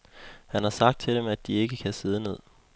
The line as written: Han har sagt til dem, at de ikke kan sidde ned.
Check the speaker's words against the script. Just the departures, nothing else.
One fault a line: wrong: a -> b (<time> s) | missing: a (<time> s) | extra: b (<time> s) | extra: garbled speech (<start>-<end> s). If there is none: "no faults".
no faults